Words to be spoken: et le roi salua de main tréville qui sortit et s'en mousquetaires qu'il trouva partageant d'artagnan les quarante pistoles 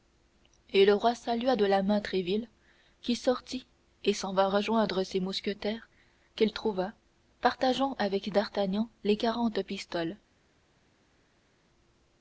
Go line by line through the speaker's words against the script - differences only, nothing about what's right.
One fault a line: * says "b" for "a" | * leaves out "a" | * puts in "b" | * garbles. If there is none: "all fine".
* puts in "la"
* puts in "vint rejoindre ses"
* puts in "avec"